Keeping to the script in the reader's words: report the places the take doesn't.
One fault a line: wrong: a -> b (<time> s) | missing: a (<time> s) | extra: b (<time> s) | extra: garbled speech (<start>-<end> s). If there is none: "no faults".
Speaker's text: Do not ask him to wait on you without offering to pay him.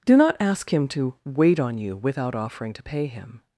no faults